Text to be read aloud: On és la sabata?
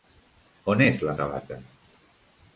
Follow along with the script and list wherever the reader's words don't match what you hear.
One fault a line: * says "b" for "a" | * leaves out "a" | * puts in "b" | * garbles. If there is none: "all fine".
all fine